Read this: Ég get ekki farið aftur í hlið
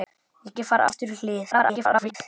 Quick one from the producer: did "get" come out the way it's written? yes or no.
no